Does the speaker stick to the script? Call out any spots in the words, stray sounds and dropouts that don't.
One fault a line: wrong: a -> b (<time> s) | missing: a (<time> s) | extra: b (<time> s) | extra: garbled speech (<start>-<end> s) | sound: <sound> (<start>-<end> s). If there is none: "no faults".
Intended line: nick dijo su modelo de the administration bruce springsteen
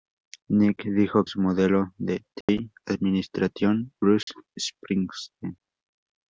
sound: dropout (2.4-2.5 s)
sound: dropout (4.2-4.3 s)